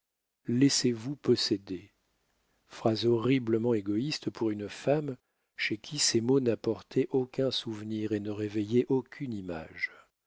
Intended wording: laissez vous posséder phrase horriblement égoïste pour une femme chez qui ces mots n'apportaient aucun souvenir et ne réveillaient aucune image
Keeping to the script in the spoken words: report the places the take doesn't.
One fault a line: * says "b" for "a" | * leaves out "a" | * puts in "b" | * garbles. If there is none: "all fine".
all fine